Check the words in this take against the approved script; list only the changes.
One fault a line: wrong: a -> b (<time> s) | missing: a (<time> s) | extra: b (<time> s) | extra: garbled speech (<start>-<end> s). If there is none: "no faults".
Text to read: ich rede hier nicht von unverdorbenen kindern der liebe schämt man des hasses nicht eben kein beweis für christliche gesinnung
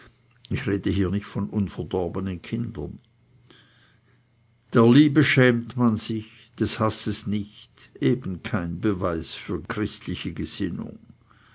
extra: sich (6.0 s)